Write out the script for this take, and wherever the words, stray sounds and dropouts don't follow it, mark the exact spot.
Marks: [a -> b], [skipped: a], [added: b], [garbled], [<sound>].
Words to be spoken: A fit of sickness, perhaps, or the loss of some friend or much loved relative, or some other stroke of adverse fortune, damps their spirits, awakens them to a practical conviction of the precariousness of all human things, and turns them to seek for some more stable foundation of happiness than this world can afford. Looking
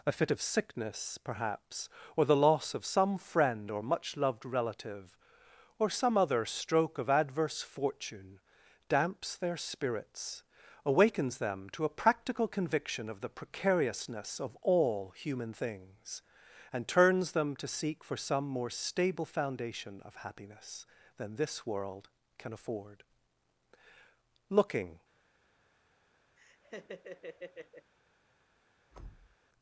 A fit of sickness, perhaps, or the loss of some friend or much loved relative, or some other stroke of adverse fortune, damps their spirits, awakens them to a practical conviction of the precariousness of all human things, and turns them to seek for some more stable foundation of happiness than this world can afford. Looking [laugh] [thud]